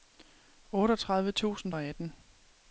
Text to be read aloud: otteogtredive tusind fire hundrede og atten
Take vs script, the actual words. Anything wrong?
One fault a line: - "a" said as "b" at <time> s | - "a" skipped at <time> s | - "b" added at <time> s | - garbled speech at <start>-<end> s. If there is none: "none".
- "fire hundrede" skipped at 1.7 s